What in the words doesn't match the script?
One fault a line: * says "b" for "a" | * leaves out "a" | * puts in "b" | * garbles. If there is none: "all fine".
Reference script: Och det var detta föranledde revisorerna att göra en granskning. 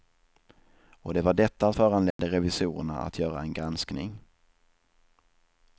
all fine